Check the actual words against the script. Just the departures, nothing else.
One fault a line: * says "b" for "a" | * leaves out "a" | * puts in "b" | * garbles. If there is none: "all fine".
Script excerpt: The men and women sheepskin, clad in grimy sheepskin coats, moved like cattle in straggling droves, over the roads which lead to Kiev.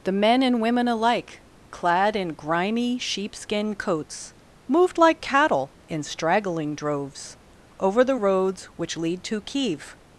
* says "alike" for "sheepskin"